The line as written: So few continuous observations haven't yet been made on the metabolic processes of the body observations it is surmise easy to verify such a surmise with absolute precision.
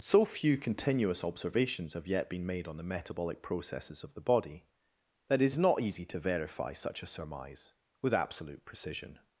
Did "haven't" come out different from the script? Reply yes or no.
yes